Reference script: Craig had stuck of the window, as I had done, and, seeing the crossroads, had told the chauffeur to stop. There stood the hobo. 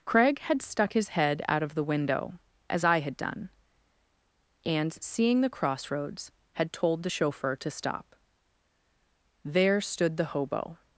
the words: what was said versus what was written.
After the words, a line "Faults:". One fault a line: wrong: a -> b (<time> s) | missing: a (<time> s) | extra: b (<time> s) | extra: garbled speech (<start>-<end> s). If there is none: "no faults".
Craig had stuck his head out of the window, as I had done, and, seeing the crossroads, had told the chauffeur to stop. There stood the hobo.
Faults:
extra: his head out (0.9 s)